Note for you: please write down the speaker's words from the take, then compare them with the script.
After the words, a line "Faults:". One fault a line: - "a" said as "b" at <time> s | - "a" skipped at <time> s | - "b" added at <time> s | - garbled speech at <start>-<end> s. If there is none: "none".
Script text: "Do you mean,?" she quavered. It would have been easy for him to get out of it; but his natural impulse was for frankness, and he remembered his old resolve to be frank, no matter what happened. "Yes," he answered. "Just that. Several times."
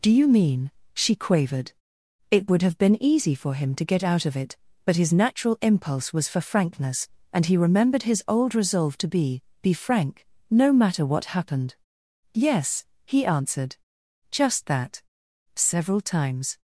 "Do you mean,?" she quavered. It would have been easy for him to get out of it; but his natural impulse was for frankness, and he remembered his old resolve to be be frank, no matter what happened. "Yes," he answered. "Just that. Several times."
Faults:
- "be" added at 9.6 s